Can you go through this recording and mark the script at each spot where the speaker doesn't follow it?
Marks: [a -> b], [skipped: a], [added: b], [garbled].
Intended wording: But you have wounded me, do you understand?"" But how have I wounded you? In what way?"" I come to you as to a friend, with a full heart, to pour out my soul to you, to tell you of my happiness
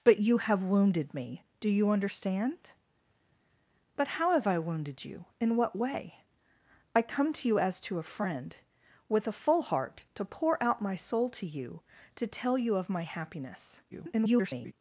But you have wounded me, do you understand?"" But how have I wounded you? In what way?"" I come to you as to a friend, with a full heart, to pour out my soul to you, to tell you of my happiness [garbled]